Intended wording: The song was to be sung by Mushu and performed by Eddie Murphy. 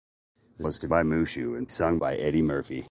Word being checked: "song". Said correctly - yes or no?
no